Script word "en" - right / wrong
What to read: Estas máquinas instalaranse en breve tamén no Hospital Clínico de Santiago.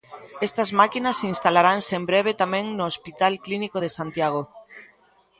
right